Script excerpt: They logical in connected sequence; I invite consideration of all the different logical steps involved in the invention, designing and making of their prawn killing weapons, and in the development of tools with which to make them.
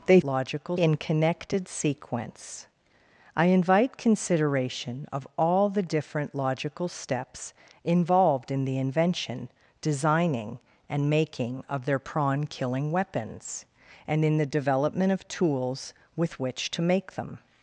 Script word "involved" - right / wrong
right